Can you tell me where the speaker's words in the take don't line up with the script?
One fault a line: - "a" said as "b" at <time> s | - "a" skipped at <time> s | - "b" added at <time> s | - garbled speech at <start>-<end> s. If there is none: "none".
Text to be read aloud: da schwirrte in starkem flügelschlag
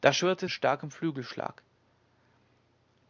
none